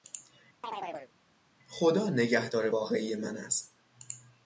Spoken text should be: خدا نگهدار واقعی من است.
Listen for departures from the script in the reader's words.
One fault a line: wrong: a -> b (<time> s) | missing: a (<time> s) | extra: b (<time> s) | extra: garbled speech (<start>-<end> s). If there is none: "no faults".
no faults